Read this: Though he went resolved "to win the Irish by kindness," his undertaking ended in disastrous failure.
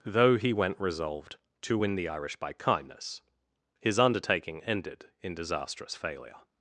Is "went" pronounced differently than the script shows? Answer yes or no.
no